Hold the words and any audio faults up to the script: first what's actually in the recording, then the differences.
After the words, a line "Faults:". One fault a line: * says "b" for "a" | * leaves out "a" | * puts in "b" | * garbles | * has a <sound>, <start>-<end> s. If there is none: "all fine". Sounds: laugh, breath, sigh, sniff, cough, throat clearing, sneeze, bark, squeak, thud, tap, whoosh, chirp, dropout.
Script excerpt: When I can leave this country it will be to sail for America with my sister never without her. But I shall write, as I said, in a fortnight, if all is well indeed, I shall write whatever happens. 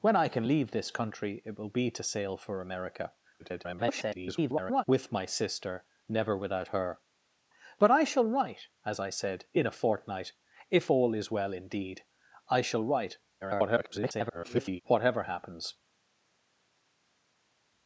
When I can leave this country it will be to sail for America [garbled] with my sister never without her. But I shall write, as I said, in a fortnight, if all is well indeed, I shall write [garbled] whatever happens.
Faults:
* garbles
* garbles